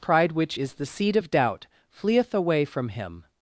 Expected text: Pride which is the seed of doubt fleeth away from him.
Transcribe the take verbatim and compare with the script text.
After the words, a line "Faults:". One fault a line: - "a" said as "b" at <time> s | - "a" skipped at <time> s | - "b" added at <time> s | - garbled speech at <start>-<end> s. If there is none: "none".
Pride which is the seed of doubt fleeth away from him.
Faults:
none